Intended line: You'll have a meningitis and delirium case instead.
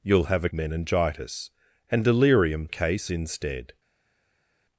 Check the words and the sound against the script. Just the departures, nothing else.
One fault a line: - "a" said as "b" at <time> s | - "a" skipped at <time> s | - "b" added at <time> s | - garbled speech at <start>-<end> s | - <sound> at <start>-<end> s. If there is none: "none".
none